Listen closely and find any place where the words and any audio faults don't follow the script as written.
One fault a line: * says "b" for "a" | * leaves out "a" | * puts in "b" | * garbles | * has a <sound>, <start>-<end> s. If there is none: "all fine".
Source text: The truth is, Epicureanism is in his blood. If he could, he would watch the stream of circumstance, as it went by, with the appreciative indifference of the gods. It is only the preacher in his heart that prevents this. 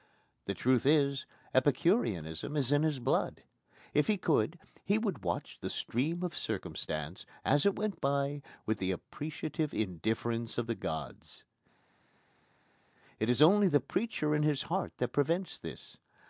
all fine